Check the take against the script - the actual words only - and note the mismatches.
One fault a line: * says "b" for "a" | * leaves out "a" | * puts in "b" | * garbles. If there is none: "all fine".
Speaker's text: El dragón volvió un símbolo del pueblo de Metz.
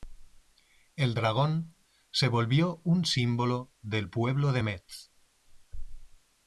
* puts in "se"